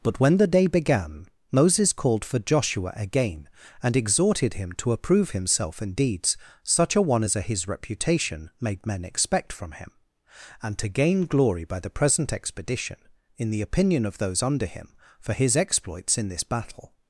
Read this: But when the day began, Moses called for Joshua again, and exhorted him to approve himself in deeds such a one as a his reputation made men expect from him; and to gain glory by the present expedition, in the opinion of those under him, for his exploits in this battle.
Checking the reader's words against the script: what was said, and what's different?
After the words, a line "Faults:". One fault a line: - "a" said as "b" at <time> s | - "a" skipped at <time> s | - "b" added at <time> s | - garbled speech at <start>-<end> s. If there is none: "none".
But when the day began, Moses called for Joshua again, and exhorted him to approve himself in deeds such a one as a his reputation made men expect from him; and to gain glory by the present expedition, in the opinion of those under him, for his exploits in this battle.
Faults:
none